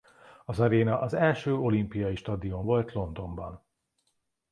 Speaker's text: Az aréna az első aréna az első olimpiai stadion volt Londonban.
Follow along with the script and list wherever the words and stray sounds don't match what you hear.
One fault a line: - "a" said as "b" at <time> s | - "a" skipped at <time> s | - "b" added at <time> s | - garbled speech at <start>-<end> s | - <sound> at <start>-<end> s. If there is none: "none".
- "aréna az első" skipped at 1.6 s